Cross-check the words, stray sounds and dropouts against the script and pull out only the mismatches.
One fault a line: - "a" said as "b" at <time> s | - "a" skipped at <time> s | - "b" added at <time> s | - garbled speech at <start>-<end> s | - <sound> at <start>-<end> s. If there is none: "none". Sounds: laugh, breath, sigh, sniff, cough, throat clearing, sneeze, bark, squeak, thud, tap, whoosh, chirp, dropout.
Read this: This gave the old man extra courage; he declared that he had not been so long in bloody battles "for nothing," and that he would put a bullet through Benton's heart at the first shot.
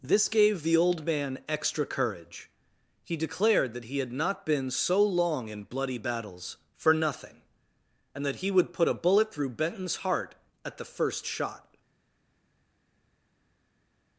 none